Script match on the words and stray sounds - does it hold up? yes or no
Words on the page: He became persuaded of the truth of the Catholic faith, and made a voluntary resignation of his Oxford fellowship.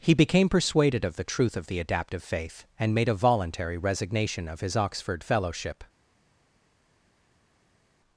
no